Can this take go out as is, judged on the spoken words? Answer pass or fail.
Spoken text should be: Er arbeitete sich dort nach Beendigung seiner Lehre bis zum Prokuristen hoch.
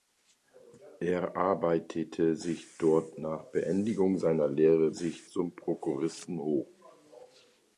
fail